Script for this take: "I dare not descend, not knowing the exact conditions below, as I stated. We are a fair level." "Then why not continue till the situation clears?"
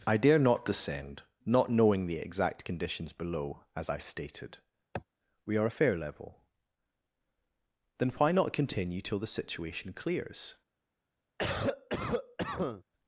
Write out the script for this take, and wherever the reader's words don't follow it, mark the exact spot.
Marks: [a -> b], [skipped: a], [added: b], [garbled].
"I dare not descend, not knowing the exact conditions below, as I stated. We are a fair level." "Then why not continue till the situation clears?"